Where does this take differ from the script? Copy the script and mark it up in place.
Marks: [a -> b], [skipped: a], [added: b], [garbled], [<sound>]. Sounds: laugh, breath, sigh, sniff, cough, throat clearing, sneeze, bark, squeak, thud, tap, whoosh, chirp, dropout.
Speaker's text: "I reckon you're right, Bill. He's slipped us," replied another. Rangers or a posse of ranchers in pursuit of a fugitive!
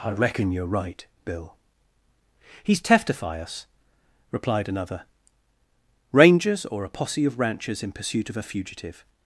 "I reckon you're right, Bill. He's [slipped -> teftify] us," replied another. Rangers or a posse of ranchers in pursuit of a fugitive!